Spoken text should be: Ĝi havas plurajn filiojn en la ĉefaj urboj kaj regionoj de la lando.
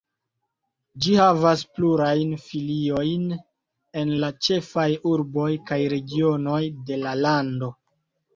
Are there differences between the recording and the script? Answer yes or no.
no